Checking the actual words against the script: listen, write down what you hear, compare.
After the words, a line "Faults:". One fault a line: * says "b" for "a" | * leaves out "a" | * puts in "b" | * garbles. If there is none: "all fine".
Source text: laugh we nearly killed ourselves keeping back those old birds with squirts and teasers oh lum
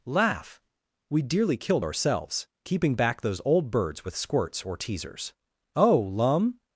laugh we dearly killed ourselves keeping back those old birds with squirts or teasers oh lum
Faults:
* says "dearly" for "nearly"
* says "or" for "and"